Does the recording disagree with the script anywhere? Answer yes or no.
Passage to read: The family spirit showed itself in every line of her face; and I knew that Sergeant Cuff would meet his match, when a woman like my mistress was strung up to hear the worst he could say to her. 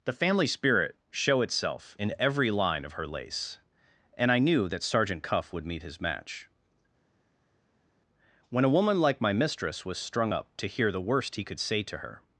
yes